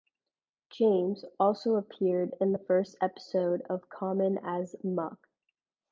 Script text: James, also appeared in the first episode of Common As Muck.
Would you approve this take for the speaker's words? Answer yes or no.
yes